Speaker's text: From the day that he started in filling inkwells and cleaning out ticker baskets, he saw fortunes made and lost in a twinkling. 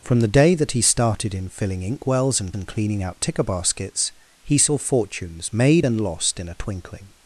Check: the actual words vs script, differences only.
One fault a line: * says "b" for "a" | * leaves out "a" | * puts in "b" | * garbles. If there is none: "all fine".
* puts in "and"